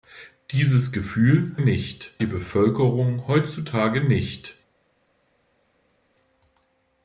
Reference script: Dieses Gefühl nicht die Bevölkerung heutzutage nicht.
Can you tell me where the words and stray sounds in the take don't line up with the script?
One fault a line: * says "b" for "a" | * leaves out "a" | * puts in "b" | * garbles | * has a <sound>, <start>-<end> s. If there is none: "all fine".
all fine